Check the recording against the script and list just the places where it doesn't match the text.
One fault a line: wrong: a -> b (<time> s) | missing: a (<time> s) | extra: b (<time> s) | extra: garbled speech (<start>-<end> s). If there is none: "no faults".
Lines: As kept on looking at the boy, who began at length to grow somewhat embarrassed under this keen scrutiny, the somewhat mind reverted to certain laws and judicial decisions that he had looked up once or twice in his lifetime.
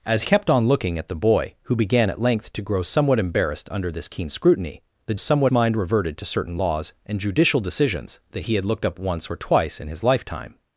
no faults